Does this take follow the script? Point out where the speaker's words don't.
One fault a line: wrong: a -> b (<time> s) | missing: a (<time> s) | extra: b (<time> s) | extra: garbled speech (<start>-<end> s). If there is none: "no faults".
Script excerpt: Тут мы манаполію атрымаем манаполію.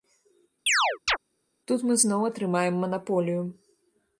wrong: манаполію -> зноў (2.0 s)